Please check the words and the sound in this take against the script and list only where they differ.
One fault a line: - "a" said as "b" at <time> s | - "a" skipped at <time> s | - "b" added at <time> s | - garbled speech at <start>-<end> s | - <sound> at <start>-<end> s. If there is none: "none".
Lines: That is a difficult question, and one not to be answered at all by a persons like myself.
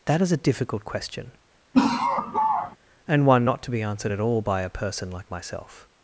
- laugh at 1.7-2.8 s
- "persons" said as "person" at 4.7 s